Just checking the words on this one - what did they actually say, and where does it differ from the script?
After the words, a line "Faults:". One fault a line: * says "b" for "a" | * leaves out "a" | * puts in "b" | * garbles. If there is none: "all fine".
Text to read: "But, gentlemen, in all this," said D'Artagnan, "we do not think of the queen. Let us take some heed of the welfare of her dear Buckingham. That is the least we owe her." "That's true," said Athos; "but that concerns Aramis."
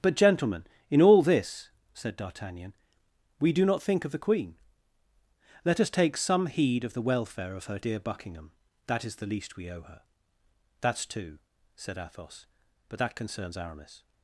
"But, gentlemen, in all this," said D'Artagnan, "we do not think of the queen. Let us take some heed of the welfare of her dear Buckingham. That is the least we owe her." "That's two," said Athos; "but that concerns Aramis."
Faults:
* says "two" for "true"